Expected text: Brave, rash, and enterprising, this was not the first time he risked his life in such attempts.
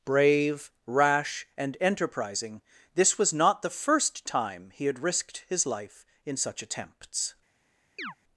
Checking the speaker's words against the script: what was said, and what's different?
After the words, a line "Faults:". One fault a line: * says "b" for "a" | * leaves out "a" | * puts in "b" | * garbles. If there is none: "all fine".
Brave, rash, and enterprising, this was not the first time he had risked his life in such attempts.
Faults:
* puts in "had"